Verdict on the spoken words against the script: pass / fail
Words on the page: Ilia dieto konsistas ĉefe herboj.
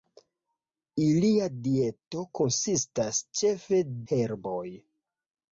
pass